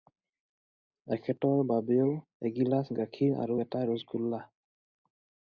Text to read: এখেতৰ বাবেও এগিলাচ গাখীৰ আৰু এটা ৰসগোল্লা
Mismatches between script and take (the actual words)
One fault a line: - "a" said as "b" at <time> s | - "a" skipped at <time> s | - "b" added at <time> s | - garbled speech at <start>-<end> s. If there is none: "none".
none